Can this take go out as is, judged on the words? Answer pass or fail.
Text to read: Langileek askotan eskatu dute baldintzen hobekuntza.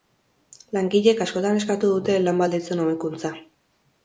fail